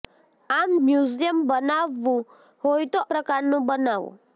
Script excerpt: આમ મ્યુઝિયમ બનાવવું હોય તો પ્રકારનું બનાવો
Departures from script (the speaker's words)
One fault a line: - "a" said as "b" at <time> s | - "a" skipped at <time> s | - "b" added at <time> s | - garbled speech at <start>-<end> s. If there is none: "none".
none